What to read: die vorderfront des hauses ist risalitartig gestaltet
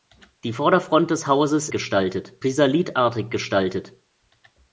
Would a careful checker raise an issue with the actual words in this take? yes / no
yes